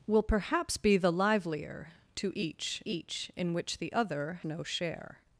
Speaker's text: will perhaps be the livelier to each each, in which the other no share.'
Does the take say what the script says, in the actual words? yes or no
yes